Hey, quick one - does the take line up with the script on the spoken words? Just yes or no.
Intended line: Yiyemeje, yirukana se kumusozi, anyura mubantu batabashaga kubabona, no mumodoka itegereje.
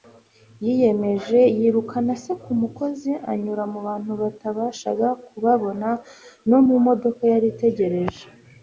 no